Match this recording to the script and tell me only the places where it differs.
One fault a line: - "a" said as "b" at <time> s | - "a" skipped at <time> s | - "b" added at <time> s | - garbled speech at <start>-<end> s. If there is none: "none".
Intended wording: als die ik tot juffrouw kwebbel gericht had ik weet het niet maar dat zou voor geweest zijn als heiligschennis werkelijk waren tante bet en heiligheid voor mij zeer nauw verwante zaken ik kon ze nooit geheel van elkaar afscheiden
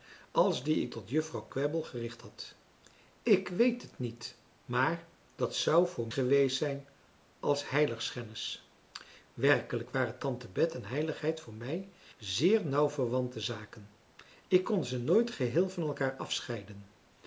none